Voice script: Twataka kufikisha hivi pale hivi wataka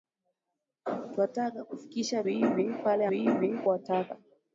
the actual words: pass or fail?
pass